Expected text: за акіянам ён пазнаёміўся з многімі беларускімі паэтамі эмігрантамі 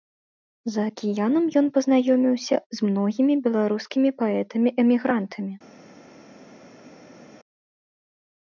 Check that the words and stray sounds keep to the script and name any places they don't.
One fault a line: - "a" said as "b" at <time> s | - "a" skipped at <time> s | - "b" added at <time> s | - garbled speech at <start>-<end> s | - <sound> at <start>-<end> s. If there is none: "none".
none